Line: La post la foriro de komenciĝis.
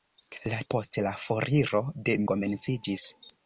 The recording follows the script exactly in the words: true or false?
true